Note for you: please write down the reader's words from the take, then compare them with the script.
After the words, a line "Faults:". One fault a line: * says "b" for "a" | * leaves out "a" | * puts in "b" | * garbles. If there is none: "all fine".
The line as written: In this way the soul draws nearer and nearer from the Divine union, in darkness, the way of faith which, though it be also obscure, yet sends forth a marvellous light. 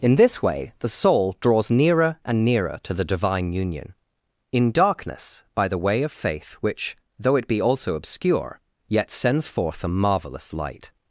In this way the soul draws nearer and nearer to the Divine union, in darkness, by the way of faith which, though it be also obscure, yet sends forth a marvellous light.
Faults:
* says "to" for "from"
* puts in "by"